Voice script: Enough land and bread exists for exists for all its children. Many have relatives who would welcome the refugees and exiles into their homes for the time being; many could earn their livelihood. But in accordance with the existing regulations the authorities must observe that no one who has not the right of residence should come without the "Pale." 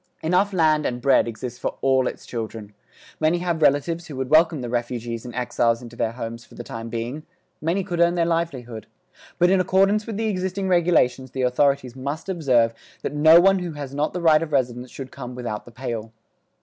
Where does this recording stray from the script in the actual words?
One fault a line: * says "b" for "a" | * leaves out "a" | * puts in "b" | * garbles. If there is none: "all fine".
* leaves out "exists for"